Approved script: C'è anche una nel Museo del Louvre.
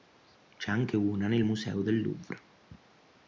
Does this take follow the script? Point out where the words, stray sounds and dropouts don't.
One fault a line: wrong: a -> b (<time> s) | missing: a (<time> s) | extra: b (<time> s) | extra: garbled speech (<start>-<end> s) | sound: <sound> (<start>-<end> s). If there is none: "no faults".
no faults